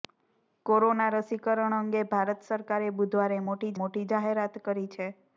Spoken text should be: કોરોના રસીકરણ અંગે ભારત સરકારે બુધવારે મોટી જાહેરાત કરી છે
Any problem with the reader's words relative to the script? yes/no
yes